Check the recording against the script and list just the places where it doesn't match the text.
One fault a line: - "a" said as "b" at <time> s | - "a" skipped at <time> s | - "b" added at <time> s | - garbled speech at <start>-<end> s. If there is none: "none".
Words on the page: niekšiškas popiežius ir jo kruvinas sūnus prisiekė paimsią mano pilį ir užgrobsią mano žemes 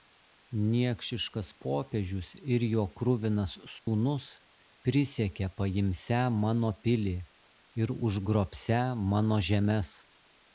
none